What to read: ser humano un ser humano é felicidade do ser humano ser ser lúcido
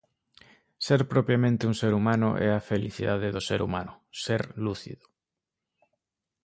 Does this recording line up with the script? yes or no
no